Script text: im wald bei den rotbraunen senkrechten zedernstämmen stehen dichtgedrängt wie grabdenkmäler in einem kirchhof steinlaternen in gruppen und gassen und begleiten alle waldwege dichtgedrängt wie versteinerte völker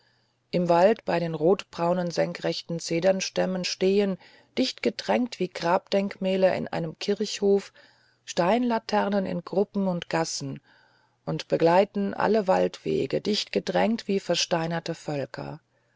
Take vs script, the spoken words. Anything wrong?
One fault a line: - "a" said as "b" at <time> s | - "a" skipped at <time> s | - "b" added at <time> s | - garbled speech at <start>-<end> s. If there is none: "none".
none